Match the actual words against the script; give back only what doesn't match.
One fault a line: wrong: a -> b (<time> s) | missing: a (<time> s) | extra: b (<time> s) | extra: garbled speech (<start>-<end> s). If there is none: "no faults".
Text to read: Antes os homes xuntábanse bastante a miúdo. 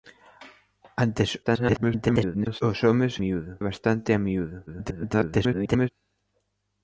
extra: garbled speech (1.4-2.6 s)
wrong: xuntábanse -> miúdo (3.2 s)
extra: garbled speech (4.7-5.9 s)